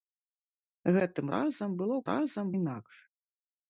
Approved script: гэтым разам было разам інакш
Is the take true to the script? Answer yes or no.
yes